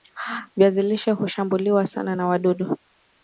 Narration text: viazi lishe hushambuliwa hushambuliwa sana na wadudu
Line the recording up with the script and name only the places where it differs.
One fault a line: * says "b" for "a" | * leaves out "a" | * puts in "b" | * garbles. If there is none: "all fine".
* leaves out "hushambuliwa"